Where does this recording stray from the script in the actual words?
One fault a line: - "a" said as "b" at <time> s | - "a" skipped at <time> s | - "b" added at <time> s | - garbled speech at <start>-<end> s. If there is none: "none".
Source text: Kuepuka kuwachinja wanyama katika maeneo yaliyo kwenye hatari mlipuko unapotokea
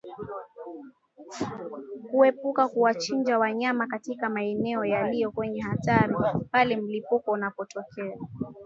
- "pale" added at 6.5 s